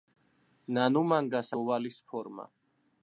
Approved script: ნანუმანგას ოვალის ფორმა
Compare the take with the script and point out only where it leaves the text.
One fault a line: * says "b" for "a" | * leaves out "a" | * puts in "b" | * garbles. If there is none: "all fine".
all fine